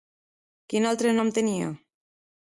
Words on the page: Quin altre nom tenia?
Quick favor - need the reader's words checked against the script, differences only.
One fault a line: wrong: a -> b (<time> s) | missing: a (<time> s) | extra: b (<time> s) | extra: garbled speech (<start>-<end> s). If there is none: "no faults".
no faults